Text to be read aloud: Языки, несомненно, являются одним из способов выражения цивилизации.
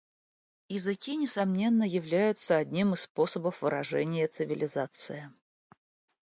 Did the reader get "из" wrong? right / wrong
right